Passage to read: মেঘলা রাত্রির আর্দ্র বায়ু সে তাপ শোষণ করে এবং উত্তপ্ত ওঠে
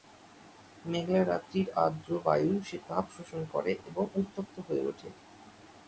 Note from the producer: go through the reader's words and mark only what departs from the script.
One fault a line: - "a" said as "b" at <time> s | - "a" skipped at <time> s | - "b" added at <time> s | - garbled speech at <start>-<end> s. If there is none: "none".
- "হয়ে" added at 4.7 s